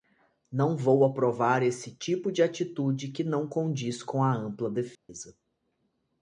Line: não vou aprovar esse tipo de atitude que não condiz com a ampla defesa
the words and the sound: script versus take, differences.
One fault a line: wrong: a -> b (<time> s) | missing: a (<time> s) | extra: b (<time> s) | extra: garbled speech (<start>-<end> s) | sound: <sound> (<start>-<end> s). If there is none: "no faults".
sound: dropout (4.9-5.1 s)